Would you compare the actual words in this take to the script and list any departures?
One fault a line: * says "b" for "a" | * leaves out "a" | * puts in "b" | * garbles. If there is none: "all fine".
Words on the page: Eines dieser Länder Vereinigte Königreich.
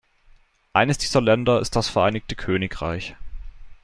* puts in "ist das"